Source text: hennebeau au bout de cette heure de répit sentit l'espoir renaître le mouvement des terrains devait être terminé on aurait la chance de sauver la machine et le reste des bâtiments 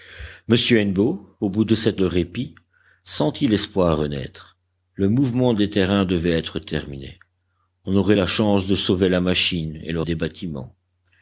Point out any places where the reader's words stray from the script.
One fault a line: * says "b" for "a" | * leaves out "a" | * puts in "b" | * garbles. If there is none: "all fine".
* leaves out "heure"
* leaves out "reste"